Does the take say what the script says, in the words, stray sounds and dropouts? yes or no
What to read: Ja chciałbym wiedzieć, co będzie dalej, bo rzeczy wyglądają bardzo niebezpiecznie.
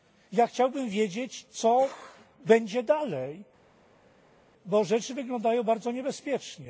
yes